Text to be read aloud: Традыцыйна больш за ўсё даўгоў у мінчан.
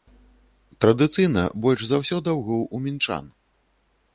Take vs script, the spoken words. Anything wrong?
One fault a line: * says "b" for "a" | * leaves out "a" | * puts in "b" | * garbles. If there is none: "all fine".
all fine